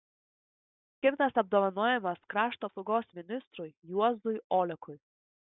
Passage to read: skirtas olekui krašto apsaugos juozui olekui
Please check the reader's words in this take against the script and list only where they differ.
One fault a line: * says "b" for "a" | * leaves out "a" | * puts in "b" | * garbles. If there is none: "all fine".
* says "apdovanojimas" for "olekui"
* puts in "ministrui"